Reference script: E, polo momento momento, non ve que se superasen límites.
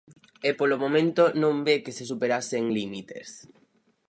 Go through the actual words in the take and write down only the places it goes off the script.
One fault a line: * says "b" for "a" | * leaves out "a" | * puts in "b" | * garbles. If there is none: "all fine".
* leaves out "momento"